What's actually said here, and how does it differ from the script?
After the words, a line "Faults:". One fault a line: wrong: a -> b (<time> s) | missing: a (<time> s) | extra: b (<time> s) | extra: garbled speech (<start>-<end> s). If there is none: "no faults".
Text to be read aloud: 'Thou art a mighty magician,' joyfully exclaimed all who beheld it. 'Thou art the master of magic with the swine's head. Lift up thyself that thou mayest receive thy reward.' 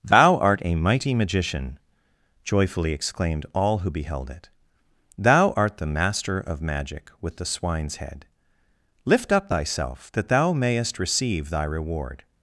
'Thou art a mighty magician,' joyfully exclaimed all who beheld it. 'Thou art the master of magic with the swine's head. Lift up thyself that thou mayest receive thy reward.'
Faults:
no faults